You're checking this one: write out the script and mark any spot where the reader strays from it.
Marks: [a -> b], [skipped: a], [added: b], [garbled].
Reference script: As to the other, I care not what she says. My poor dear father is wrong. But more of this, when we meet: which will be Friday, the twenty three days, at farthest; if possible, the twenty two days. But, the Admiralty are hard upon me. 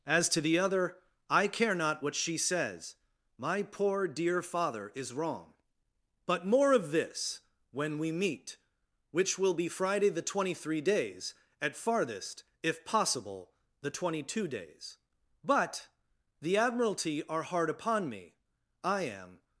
As to the other, I care not what she says. My poor dear father is wrong. But more of this, when we meet: which will be Friday, the twenty three days, at farthest; if possible, the twenty two days. But, the Admiralty are hard upon me. [added: I am]